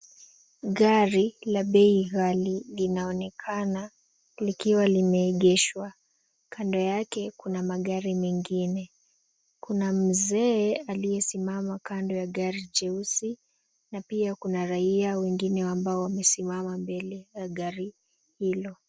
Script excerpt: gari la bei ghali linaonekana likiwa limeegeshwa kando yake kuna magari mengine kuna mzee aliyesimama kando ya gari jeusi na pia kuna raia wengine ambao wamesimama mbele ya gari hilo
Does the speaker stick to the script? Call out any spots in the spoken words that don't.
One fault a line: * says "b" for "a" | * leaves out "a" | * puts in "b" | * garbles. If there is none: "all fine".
all fine